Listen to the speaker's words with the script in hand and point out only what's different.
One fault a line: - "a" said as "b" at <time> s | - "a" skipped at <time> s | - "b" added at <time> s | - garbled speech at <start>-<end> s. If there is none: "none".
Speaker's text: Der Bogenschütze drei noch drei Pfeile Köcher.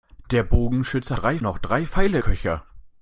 none